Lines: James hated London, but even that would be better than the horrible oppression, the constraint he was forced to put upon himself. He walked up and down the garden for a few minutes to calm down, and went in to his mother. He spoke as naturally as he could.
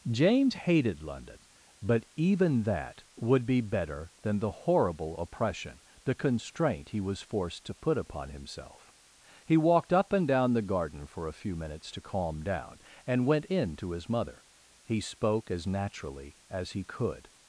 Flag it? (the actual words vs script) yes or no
no